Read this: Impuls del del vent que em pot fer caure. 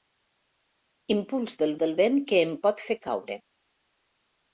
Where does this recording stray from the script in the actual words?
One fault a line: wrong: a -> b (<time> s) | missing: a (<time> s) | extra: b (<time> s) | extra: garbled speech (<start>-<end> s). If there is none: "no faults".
no faults